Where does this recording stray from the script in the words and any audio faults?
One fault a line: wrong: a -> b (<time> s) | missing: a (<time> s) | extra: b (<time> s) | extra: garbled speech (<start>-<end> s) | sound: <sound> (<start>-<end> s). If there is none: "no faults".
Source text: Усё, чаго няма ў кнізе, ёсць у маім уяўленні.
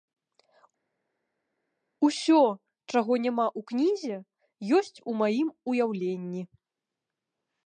no faults